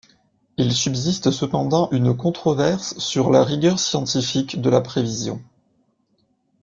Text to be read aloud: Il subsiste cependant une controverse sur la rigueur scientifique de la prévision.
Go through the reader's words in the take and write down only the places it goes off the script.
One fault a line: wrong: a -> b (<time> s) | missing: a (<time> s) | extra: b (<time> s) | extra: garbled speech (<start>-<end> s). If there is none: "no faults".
no faults